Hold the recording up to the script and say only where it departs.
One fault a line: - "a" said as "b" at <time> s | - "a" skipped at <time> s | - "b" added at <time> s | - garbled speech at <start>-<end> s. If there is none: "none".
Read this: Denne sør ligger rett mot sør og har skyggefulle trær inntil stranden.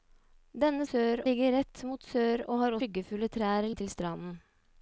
none